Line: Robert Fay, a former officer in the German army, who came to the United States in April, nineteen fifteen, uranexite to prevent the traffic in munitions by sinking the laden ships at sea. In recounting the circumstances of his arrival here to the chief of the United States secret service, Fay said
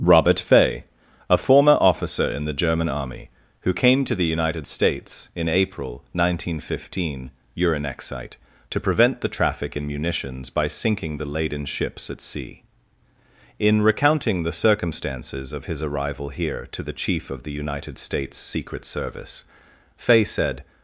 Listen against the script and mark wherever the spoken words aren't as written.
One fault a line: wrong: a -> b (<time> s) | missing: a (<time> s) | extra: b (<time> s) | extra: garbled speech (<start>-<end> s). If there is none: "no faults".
no faults